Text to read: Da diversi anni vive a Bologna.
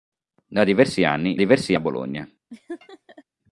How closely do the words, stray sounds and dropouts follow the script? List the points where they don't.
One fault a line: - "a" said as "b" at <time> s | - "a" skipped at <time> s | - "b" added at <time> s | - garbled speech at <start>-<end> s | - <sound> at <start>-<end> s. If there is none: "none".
- "vive" said as "diversi" at 1.3 s
- laugh at 2.5-3.2 s